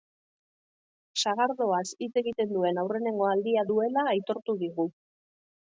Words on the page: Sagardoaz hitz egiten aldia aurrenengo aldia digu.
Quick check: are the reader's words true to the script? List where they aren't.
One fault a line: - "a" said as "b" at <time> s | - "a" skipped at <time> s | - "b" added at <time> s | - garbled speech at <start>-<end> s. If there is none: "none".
- "aldia" said as "duen" at 2.6 s
- "duela aitortu" added at 3.7 s